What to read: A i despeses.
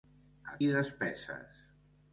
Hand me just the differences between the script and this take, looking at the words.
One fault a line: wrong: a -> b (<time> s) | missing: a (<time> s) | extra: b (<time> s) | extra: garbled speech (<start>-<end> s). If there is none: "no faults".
no faults